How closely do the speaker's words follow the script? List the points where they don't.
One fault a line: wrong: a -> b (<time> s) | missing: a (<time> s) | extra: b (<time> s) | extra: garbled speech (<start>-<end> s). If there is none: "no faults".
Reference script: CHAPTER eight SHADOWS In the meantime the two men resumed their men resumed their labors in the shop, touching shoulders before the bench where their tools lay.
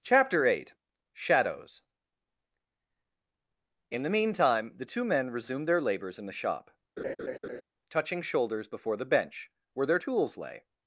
missing: men resumed their (5.8 s)